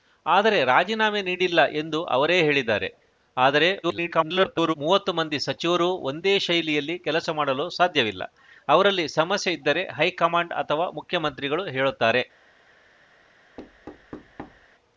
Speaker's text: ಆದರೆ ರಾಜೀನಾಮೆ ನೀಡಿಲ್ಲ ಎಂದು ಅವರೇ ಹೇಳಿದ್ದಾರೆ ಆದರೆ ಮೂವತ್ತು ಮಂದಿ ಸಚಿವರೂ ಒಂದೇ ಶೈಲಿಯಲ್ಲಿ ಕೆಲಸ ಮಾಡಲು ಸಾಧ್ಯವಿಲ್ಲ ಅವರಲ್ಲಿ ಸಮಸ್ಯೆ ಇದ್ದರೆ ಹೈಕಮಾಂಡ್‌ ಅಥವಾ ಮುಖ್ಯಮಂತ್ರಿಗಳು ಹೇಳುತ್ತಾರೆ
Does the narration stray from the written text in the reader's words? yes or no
yes